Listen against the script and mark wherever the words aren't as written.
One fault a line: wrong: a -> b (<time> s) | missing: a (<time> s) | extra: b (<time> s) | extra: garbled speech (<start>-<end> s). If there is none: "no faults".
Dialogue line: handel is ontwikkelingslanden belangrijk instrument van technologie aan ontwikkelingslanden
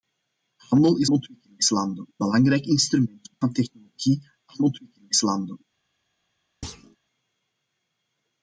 no faults